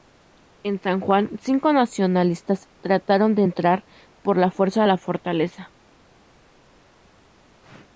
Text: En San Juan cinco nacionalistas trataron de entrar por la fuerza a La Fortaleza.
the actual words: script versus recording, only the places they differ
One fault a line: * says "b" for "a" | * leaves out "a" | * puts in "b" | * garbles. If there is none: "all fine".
all fine